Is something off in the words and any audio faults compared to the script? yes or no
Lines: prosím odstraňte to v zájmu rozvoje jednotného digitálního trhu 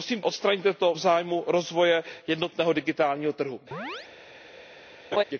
yes